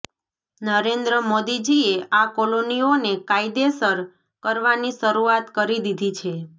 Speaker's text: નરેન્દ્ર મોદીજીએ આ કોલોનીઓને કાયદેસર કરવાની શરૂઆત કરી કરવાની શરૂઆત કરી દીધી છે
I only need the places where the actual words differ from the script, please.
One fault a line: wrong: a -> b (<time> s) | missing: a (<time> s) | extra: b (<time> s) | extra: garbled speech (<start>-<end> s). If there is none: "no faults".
missing: કરવાની શરૂઆત કરી (5.8 s)